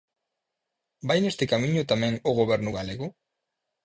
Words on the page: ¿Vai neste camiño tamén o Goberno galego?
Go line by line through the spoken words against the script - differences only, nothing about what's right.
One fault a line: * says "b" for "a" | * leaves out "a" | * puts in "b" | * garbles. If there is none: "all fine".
all fine